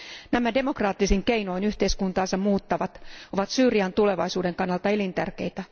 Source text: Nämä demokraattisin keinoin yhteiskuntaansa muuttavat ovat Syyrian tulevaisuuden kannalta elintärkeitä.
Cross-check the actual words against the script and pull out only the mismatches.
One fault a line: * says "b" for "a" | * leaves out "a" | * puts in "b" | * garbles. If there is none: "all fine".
all fine